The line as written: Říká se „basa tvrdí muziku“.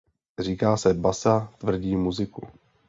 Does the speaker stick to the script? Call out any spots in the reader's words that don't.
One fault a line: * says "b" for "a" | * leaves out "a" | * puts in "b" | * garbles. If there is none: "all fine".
all fine